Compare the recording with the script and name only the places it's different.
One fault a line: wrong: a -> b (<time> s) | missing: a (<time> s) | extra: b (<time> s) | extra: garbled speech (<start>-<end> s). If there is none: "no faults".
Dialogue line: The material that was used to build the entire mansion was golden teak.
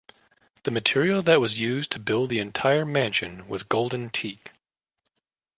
no faults